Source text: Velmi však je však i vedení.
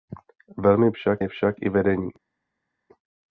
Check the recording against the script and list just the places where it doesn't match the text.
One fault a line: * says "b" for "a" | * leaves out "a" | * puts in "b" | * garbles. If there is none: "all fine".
all fine